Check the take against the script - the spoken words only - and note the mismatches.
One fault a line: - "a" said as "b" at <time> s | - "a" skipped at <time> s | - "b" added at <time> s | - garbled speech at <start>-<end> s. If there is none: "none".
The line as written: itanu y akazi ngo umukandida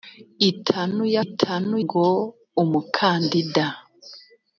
- "akazi" said as "itanu" at 1.2 s